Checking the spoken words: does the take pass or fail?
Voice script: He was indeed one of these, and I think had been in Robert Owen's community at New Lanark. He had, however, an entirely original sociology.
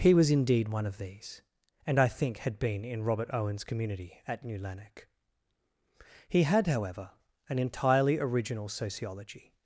pass